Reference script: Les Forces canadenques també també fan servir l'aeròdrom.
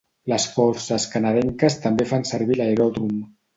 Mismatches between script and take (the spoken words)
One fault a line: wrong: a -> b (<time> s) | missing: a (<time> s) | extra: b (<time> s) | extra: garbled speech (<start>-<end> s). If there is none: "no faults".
missing: també (2.1 s)